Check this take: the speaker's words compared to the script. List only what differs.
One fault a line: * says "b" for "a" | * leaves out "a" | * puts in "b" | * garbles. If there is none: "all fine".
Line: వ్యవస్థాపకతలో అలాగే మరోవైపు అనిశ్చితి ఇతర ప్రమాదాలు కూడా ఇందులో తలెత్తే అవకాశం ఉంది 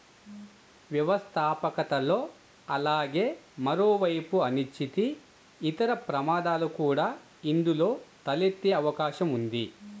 all fine